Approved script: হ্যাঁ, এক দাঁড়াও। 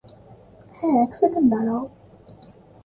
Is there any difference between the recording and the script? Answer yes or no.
yes